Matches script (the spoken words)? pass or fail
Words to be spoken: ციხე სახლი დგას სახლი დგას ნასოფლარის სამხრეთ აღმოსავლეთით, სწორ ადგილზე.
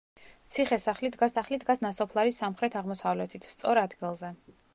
pass